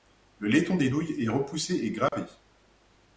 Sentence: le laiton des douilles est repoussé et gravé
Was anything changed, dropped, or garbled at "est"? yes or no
no